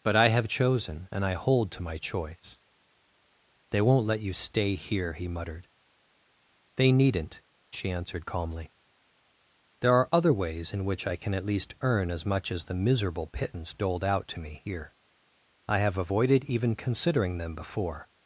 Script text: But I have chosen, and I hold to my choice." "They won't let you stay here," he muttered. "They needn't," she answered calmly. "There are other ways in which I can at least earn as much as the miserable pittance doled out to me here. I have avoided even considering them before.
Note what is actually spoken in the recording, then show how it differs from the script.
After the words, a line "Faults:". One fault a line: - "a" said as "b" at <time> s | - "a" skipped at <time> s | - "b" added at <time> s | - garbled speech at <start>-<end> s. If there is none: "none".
But I have chosen, and I hold to my choice." "They won't let you stay here," he muttered. "They needn't," she answered calmly. "There are other ways in which I can at least earn as much as the miserable pittance doled out to me here. I have avoided even considering them before.
Faults:
none